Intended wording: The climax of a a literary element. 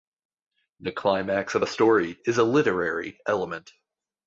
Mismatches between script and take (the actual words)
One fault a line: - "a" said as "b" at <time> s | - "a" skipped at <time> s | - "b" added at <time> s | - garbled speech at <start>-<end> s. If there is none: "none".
- "story is" added at 1.7 s